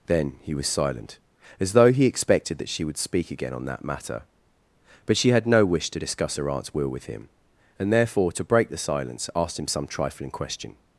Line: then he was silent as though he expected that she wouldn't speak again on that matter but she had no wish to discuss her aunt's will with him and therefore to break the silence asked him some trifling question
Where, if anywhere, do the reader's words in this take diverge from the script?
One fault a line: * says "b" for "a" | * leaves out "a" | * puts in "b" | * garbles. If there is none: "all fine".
* says "would" for "wouldn't"